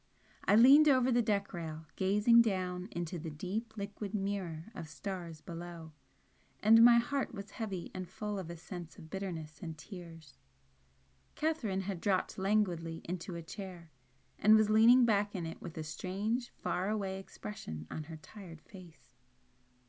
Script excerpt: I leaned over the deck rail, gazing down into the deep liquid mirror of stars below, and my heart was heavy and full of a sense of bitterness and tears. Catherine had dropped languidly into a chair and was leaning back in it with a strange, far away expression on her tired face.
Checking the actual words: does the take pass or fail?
pass